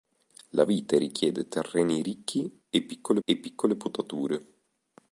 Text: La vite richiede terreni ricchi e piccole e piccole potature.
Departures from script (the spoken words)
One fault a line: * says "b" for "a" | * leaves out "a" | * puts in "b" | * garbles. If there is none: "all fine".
all fine